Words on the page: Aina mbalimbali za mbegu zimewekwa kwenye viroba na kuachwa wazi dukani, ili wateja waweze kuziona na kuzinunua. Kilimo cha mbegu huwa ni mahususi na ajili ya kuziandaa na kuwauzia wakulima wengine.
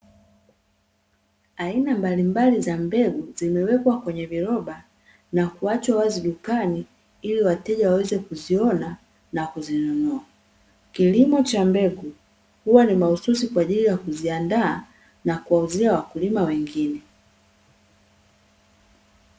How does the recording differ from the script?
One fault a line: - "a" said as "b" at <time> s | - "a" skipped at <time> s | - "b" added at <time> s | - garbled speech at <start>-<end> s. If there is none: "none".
- "na" said as "kwa" at 13.5 s